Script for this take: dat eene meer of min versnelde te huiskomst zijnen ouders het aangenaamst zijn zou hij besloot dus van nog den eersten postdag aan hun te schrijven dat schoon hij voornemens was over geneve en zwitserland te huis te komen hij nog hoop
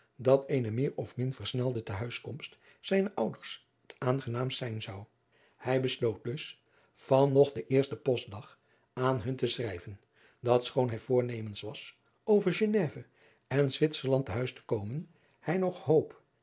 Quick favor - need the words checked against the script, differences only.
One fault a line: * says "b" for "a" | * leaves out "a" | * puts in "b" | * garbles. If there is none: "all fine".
all fine